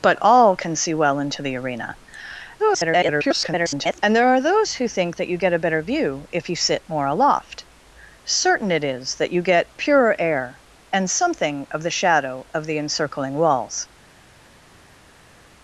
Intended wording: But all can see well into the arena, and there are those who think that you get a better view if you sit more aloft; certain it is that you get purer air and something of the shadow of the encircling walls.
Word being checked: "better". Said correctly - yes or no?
yes